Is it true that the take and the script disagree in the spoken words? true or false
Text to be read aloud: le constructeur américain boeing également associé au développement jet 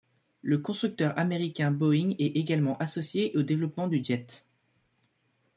true